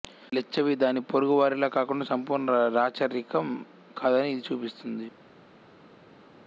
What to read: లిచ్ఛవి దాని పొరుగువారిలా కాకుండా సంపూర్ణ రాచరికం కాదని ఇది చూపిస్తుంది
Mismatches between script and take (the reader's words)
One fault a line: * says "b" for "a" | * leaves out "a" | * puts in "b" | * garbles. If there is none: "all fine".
all fine